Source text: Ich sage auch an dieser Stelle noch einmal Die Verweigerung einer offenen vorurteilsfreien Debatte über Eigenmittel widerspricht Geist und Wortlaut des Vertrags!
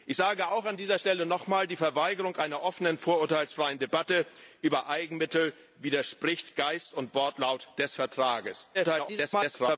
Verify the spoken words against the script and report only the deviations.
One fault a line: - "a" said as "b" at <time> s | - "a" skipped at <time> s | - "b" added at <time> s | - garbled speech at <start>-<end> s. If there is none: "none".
- garbled speech at 8.7-9.8 s